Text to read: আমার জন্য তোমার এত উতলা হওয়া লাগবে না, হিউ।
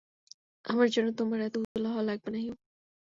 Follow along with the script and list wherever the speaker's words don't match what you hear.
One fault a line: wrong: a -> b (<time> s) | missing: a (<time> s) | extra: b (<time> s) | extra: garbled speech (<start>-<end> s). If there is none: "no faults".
no faults